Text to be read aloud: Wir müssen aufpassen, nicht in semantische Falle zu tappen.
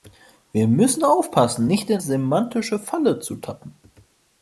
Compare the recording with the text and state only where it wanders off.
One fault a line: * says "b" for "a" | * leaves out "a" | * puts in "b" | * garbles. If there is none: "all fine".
all fine